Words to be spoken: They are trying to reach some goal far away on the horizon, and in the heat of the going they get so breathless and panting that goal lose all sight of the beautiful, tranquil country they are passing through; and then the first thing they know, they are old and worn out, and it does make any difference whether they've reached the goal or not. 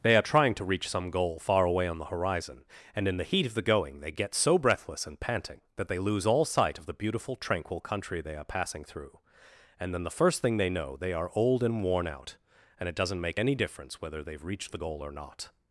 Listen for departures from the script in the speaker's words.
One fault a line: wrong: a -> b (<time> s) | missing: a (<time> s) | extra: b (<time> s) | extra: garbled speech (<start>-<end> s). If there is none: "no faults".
wrong: goal -> they (5.9 s)
wrong: does -> doesn't (12.9 s)